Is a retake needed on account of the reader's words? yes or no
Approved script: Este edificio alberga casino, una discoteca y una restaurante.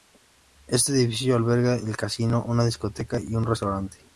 yes